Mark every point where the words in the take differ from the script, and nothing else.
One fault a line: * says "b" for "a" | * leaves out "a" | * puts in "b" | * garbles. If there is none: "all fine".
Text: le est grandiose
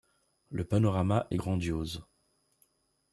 * puts in "panorama"